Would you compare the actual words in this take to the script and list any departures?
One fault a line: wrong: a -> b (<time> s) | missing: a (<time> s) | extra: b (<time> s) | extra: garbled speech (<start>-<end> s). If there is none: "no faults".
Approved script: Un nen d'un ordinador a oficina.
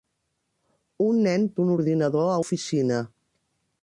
no faults